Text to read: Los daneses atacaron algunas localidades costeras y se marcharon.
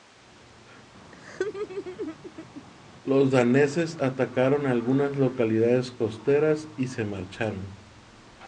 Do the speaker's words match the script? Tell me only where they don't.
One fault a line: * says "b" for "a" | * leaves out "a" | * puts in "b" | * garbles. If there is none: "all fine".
all fine